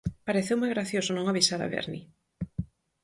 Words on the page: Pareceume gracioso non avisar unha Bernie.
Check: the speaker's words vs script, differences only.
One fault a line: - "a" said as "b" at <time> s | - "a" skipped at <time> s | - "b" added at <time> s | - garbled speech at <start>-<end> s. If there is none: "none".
- "unha" said as "a" at 1.6 s